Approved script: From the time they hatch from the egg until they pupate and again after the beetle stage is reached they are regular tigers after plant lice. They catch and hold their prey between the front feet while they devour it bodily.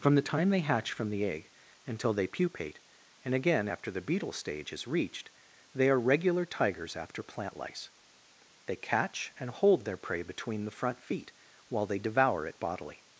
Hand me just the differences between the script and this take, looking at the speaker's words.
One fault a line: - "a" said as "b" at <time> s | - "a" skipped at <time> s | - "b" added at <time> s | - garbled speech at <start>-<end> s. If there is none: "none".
none